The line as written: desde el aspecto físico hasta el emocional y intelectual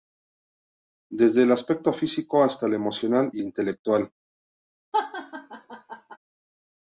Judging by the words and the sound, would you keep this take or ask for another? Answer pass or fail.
fail